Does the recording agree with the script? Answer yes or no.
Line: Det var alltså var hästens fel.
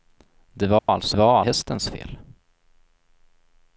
yes